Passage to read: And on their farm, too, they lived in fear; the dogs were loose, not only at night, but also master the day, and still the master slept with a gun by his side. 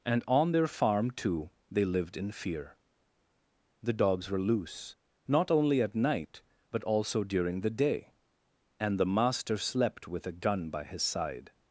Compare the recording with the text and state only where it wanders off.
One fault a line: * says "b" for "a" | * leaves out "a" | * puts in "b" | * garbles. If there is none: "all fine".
* says "during" for "master"
* leaves out "still"